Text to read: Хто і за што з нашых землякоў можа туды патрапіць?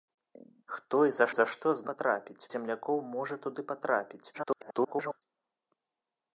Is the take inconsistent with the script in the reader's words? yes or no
yes